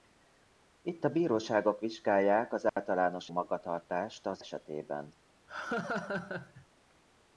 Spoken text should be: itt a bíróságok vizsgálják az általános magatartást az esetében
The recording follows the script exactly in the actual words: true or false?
true